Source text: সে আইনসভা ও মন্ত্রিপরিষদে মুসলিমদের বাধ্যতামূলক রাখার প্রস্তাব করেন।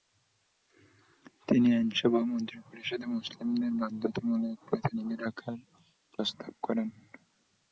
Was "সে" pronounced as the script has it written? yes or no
no